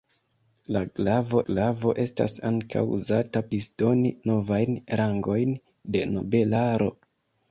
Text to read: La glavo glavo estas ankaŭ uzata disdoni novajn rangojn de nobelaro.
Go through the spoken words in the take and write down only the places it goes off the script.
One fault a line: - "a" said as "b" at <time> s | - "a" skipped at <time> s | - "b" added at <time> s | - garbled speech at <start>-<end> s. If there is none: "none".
none